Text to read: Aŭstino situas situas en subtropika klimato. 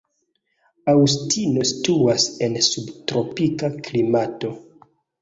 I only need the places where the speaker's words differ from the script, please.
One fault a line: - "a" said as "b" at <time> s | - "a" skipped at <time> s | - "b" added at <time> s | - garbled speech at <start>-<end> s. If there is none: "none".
- "situas" skipped at 2.2 s